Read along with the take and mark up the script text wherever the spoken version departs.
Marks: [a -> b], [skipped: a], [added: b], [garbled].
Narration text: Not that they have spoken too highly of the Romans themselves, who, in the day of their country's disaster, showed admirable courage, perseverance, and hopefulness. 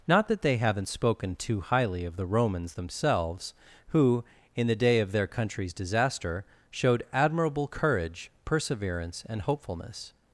Not that they [have -> haven't] spoken too highly of the Romans themselves, who, in the day of their country's disaster, showed admirable courage, perseverance, and hopefulness.